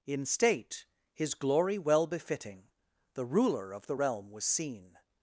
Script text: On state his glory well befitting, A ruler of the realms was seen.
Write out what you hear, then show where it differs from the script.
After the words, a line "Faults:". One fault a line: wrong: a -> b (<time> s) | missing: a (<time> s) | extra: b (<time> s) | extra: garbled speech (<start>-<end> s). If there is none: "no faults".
In state his glory well befitting, The ruler of the realm was seen.
Faults:
wrong: On -> In (0.1 s)
wrong: A -> The (3.1 s)
wrong: realms -> realm (3.9 s)